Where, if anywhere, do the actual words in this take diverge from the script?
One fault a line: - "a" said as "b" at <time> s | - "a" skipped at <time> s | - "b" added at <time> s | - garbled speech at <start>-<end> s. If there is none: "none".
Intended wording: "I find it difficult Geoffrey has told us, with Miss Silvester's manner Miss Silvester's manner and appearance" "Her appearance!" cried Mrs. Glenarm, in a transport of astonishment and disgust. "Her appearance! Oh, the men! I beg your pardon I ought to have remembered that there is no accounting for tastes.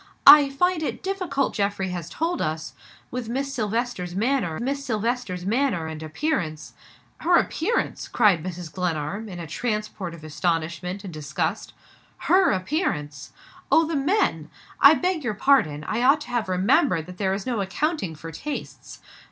none